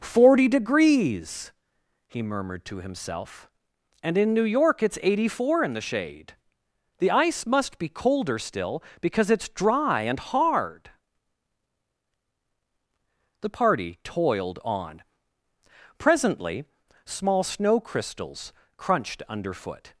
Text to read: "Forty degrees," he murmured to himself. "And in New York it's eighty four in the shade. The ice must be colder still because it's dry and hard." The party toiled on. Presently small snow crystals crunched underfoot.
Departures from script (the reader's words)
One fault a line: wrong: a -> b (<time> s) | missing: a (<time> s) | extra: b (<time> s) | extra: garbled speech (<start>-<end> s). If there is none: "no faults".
no faults